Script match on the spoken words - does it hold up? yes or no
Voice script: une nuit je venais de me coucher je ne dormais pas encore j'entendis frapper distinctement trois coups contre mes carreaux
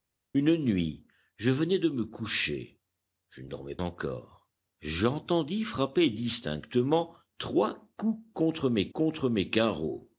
no